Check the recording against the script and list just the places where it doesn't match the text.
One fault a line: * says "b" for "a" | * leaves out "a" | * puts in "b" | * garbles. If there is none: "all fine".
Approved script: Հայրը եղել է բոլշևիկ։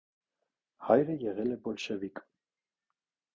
all fine